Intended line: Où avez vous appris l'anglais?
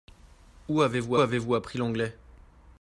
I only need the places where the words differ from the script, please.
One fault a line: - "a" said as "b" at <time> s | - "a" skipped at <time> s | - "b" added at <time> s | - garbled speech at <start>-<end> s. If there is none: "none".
- "avez vous" added at 1.2 s